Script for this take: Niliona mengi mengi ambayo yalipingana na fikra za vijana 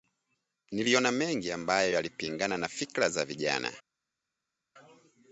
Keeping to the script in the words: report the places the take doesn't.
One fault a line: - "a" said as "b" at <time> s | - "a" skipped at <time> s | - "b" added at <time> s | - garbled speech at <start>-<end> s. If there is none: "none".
- "mengi" skipped at 1.5 s